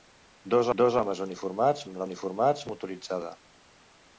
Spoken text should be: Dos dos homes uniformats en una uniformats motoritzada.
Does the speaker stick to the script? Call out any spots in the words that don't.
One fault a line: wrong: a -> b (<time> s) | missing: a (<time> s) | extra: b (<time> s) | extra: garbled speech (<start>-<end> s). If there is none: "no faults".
no faults